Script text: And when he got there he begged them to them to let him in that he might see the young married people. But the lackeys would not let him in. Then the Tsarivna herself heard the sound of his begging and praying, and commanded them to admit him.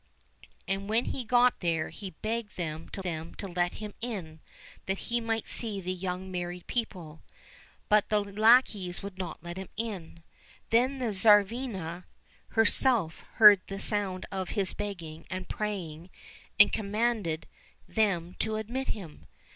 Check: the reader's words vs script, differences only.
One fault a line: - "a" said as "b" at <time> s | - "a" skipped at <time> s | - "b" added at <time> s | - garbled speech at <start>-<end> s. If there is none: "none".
none